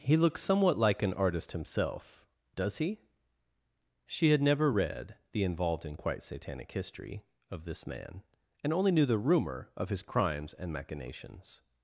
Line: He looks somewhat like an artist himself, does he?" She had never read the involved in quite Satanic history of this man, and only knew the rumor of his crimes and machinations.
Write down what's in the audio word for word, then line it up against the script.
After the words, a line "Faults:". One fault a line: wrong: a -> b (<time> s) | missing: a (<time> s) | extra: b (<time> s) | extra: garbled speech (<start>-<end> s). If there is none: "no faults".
He looks somewhat like an artist himself, does he?" She had never read the involved in quite Satanic history of this man, and only knew the rumor of his crimes and machinations.
Faults:
no faults